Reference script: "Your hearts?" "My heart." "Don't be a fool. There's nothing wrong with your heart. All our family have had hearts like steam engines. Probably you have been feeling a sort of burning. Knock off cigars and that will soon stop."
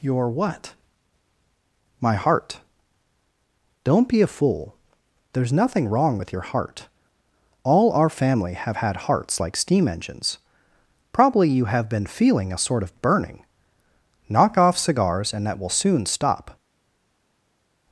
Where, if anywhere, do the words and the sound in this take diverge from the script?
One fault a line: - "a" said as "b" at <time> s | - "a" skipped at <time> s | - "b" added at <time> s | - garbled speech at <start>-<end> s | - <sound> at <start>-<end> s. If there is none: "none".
- "hearts" said as "what" at 0.3 s